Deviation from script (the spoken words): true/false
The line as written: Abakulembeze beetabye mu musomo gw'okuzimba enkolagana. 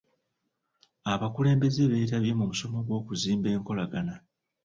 false